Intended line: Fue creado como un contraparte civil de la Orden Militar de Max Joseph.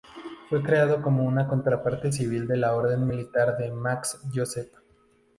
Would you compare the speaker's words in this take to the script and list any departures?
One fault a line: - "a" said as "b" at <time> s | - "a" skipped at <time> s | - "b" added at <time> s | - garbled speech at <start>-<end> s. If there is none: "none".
- "un" said as "una" at 1.2 s